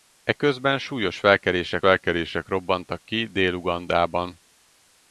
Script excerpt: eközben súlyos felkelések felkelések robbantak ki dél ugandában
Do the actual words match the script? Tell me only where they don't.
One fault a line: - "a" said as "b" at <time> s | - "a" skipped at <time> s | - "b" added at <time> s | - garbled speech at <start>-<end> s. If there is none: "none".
none